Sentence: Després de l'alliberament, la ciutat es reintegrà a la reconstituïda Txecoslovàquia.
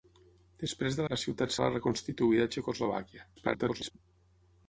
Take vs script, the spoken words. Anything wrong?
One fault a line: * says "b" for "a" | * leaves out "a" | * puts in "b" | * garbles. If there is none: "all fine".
* leaves out "l'alliberament"
* leaves out "reintegrà"
* garbles